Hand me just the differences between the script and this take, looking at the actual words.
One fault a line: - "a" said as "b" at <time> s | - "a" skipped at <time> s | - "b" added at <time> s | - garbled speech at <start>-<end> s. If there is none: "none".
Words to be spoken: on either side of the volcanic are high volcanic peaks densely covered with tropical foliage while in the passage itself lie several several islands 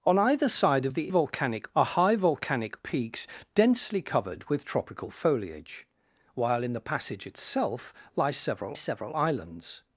none